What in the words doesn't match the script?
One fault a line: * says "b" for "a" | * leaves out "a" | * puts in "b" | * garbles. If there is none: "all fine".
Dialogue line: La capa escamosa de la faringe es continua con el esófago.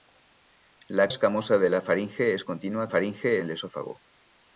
* leaves out "capa"
* says "faringe" for "con"